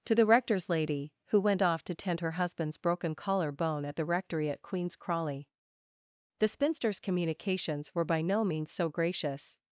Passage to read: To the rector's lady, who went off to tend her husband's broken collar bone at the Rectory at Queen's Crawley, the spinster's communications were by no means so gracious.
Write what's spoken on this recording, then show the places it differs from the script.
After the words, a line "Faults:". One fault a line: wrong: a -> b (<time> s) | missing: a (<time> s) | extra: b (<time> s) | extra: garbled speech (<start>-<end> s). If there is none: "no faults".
To the rector's lady, who went off to tend her husband's broken collar bone at the Rectory at Queen's Crawley, the spinster's communications were by no means so gracious.
Faults:
no faults